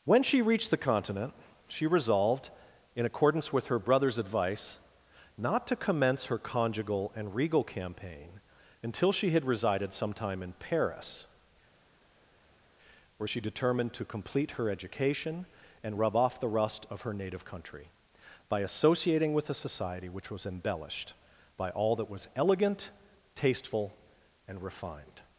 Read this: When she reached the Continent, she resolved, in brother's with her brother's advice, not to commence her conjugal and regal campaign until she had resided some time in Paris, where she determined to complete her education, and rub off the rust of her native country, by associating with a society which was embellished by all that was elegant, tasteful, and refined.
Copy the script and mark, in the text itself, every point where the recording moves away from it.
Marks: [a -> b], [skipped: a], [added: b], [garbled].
When she reached the Continent, she resolved, in [brother's -> accordance] with her brother's advice, not to commence her conjugal and regal campaign until she had resided some time in Paris, where she determined to complete her education, and rub off the rust of her native country, by associating with a society which was embellished by all that was elegant, tasteful, and refined.